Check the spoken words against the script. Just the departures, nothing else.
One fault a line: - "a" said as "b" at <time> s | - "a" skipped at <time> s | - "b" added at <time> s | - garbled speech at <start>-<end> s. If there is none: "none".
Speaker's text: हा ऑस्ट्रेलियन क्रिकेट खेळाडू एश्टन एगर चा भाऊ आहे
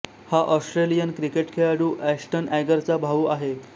none